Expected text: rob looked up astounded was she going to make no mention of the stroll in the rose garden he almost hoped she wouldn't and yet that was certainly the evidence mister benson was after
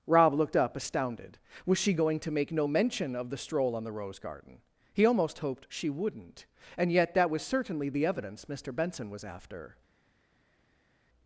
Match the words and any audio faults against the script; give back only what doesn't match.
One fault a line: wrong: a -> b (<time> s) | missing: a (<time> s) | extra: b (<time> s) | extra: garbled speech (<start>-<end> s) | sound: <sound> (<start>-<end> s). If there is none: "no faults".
wrong: in -> on (3.8 s)